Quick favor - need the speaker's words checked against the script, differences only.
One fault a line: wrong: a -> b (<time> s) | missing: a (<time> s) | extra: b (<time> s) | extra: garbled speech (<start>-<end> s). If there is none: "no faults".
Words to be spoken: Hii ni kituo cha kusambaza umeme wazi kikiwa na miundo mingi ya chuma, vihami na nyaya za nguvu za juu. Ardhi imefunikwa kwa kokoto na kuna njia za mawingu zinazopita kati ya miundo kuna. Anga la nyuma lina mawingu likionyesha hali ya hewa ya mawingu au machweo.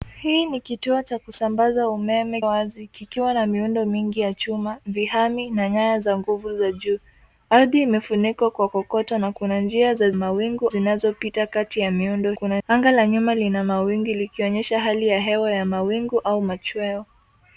no faults